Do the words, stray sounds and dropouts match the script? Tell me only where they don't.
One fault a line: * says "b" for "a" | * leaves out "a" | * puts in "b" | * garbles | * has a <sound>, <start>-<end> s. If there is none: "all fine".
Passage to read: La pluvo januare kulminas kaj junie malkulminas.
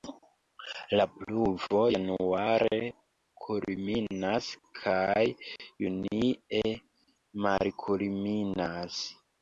all fine